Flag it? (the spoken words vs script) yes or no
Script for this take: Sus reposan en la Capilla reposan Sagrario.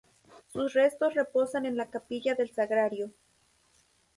yes